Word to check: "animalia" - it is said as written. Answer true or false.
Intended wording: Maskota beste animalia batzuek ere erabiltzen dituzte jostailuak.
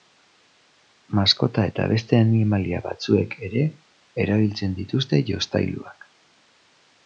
true